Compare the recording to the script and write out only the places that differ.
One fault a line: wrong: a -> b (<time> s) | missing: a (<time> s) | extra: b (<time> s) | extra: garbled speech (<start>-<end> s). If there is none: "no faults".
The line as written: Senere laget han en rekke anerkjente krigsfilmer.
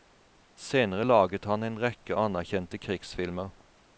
no faults